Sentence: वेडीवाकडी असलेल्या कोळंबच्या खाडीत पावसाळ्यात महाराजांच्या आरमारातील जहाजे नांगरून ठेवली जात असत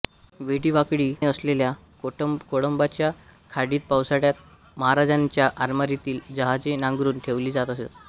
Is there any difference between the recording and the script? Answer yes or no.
no